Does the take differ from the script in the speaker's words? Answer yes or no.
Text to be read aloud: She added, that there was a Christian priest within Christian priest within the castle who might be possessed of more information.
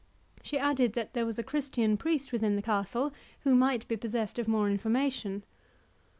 yes